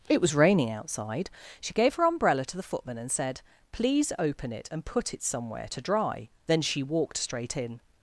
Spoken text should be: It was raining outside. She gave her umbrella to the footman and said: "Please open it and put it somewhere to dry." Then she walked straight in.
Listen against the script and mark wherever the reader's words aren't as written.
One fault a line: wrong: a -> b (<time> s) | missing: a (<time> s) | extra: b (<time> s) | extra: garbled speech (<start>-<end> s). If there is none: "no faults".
no faults